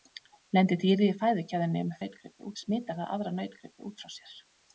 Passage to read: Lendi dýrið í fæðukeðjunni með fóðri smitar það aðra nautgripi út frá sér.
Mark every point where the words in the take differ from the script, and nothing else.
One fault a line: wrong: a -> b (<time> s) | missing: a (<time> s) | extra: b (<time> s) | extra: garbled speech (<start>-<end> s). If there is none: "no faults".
wrong: fóðri -> nautgripi (2.0 s)